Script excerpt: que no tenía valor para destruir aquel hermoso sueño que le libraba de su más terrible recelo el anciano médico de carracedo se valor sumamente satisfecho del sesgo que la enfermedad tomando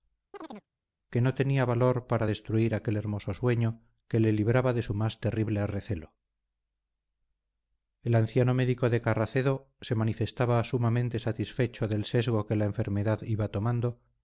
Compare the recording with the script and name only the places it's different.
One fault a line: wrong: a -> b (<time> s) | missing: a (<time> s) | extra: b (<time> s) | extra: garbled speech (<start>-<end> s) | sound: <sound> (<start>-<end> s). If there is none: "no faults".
sound: chirp (0.3-0.7 s)
wrong: valor -> manifestaba (9.9 s)
extra: iba (13.2 s)